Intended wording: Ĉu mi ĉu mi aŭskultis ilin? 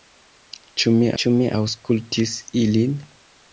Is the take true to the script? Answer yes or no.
yes